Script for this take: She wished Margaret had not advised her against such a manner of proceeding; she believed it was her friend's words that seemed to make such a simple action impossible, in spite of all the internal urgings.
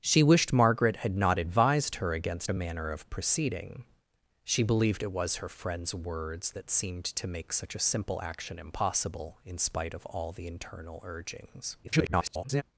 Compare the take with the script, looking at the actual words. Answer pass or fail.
fail